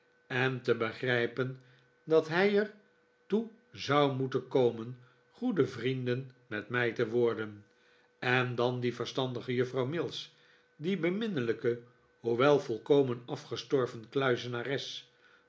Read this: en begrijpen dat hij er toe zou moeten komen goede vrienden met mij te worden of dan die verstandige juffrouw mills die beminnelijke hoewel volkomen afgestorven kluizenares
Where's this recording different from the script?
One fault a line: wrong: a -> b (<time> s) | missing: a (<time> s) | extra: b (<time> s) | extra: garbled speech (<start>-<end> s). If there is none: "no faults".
extra: te (0.6 s)
wrong: of -> en (8.2 s)